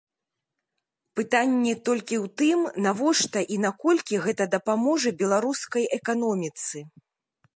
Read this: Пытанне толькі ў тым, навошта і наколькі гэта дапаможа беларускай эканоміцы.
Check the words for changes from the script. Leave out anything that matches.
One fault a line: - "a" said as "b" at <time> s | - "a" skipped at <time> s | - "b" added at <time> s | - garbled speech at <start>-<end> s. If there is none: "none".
none